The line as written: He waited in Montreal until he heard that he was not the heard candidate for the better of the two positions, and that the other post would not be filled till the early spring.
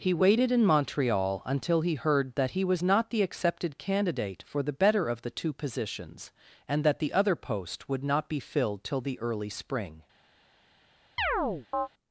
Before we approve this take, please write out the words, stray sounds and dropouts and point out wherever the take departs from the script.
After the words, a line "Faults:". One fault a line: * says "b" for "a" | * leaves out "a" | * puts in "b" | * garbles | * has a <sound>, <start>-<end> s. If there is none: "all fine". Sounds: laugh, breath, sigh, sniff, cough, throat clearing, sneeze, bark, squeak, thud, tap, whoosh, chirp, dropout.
He waited in Montreal until he heard that he was not the accepted candidate for the better of the two positions, and that the other post would not be filled till the early spring.
Faults:
* says "accepted" for "heard"
* has a chirp, 11.2-11.9 s